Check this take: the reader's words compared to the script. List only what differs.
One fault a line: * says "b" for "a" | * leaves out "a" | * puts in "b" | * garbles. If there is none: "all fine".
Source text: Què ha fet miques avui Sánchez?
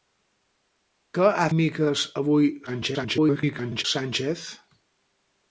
* leaves out "fet"
* garbles